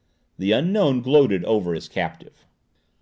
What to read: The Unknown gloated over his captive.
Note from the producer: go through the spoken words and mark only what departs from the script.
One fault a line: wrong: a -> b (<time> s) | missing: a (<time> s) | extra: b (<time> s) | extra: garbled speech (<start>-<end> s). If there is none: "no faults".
no faults